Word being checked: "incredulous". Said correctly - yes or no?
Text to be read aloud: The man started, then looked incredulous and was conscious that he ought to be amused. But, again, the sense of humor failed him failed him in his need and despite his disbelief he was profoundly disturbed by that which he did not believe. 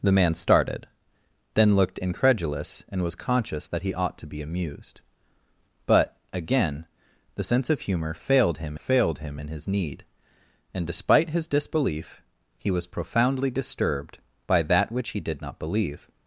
yes